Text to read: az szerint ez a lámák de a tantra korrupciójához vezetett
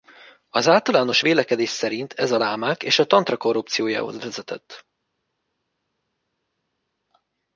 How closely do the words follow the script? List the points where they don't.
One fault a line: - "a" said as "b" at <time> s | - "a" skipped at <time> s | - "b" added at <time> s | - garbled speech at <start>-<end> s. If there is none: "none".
- "általános vélekedés" added at 0.7 s
- "de" said as "és" at 2.8 s